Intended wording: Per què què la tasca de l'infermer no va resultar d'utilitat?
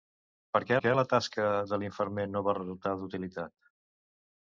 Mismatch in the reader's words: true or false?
false